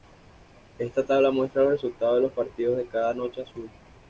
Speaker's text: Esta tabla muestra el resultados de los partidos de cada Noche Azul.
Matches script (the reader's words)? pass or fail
fail